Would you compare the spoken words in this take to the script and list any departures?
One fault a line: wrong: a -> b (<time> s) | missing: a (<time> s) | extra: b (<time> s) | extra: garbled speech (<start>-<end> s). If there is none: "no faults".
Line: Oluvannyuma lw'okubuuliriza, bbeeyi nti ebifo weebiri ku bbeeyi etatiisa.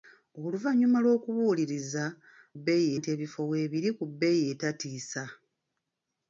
no faults